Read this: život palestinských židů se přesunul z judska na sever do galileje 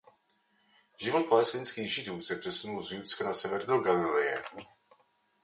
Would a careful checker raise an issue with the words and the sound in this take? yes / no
no